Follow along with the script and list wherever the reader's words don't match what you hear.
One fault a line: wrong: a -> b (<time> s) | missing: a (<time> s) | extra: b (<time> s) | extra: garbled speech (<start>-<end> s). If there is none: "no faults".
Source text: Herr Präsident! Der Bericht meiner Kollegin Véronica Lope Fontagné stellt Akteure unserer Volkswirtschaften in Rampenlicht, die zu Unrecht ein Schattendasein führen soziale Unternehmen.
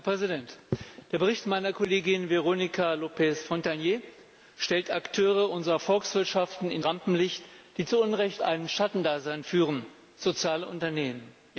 no faults